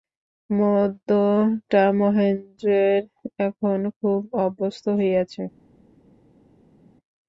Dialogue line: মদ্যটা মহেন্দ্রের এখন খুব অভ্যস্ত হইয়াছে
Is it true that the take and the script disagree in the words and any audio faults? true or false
false